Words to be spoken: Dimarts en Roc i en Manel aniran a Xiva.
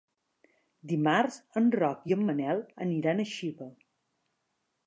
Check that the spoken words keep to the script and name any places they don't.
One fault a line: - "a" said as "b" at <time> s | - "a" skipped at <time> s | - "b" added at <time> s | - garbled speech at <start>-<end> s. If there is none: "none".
none